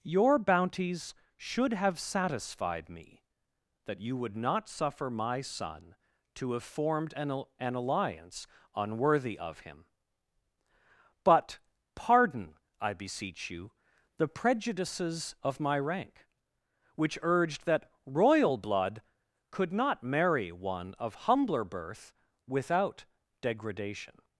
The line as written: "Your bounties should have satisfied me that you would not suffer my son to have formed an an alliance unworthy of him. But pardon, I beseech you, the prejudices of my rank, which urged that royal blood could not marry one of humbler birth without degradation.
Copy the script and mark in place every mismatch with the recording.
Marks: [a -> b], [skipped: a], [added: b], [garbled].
"Your bounties should have satisfied me that you would not suffer my son to have formed an an alliance unworthy of him. But pardon, I beseech you, the prejudices of my rank, which urged that royal blood could not marry one of humbler birth without degradation.